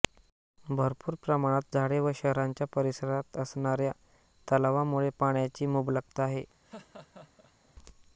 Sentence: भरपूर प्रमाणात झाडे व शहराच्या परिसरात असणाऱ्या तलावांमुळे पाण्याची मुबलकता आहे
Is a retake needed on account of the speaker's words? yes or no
no